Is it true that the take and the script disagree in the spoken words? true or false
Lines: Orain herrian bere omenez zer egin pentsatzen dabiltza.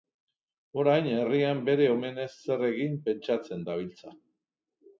false